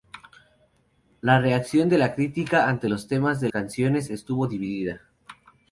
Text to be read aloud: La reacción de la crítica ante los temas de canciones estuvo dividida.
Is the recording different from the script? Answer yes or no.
no